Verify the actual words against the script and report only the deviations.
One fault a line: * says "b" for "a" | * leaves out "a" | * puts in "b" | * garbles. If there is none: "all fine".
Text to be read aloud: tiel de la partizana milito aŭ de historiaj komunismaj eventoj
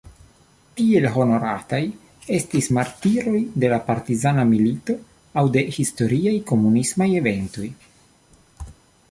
* puts in "honorataj estis martiroj"